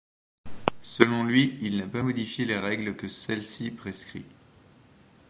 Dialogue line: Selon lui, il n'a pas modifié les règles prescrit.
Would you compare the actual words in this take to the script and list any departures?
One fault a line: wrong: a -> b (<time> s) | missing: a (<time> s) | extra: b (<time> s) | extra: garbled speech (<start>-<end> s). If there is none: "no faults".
extra: que celle ci (2.9 s)